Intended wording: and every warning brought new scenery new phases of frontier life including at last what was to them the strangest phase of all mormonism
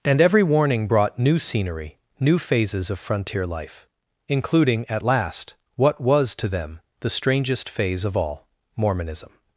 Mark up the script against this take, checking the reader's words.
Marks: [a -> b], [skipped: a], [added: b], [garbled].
and every warning brought new scenery new phases of frontier life including at last what was to them the strangest phase of all mormonism